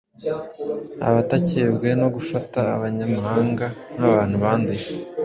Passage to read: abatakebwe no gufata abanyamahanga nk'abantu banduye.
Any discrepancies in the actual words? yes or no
no